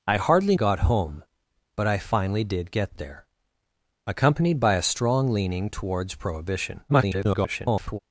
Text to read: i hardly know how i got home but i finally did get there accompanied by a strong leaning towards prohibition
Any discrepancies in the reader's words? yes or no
yes